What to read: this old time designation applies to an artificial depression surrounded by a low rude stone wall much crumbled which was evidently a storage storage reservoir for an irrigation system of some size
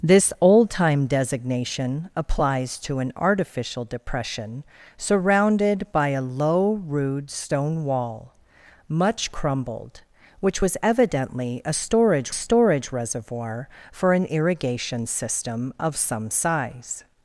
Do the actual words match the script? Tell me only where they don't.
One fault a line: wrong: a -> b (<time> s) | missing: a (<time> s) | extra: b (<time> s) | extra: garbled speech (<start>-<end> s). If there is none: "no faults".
no faults